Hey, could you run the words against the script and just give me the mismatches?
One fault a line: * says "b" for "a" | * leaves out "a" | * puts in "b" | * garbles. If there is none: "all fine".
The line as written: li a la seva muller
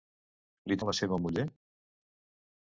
all fine